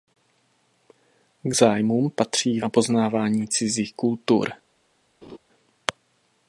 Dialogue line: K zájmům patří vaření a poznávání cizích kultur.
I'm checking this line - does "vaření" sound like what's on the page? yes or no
no